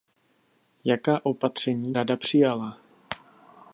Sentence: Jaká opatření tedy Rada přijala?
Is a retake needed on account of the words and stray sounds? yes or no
yes